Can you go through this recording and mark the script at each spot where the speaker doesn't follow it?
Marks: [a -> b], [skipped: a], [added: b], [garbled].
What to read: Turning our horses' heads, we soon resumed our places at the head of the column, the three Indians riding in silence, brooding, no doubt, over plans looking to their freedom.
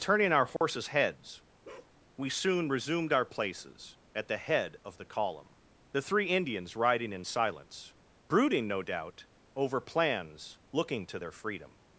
Turning our horses' heads, we soon resumed our places at the head of the column, the three Indians riding in silence, brooding, no doubt, over plans looking to their freedom.